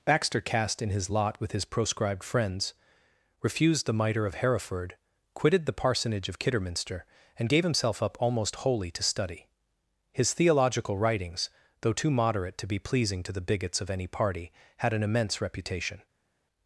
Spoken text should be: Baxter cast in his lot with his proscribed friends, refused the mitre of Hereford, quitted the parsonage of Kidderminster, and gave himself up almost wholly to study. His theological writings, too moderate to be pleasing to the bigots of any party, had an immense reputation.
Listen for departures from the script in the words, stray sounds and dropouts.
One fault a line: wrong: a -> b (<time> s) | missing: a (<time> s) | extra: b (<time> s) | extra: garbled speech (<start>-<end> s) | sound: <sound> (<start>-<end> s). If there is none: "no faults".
extra: though (11.8 s)